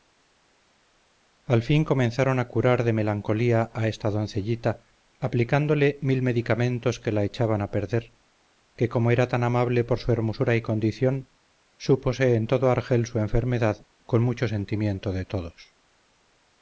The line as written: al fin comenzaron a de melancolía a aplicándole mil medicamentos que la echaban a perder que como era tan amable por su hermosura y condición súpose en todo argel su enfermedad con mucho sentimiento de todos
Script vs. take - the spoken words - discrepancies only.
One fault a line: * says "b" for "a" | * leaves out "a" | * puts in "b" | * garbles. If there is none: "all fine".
* puts in "curar"
* puts in "esta doncellita"